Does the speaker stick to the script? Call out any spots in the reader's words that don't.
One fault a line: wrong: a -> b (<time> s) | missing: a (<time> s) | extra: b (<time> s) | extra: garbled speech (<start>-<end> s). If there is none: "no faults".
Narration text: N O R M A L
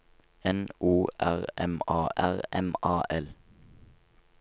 extra: R M A (2.2 s)